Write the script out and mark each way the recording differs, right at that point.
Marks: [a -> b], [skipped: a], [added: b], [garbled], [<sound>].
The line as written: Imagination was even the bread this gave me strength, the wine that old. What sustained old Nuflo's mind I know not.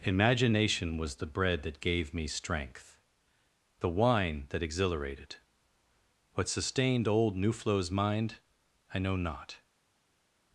Imagination was [skipped: even] the bread [this -> that] gave me strength, the wine that [old. -> exhilarated] What sustained old Nuflo's mind I know not.